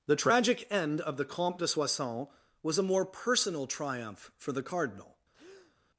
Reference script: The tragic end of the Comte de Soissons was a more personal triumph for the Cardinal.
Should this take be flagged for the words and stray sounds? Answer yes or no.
yes